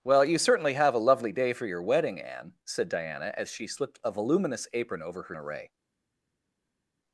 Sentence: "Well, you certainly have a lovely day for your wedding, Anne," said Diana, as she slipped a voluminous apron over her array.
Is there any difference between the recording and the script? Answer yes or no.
no